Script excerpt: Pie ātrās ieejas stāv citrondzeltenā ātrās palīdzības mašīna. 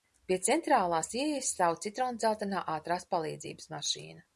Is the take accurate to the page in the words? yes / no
no